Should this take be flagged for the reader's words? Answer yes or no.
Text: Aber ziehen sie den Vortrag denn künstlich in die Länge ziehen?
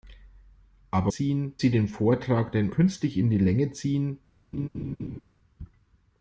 no